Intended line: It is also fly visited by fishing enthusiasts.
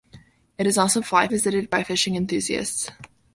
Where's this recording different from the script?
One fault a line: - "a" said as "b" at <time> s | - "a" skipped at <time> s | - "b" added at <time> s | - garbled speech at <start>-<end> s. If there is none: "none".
none